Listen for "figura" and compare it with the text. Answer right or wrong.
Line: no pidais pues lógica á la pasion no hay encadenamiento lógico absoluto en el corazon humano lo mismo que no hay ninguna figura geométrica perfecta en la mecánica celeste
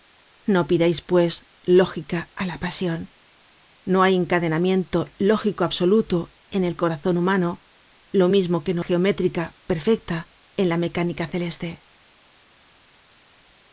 wrong